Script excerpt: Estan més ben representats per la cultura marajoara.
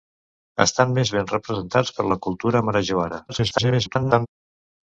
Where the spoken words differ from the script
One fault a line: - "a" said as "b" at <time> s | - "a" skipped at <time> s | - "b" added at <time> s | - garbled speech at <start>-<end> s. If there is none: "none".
- garbled speech at 3.3-4.3 s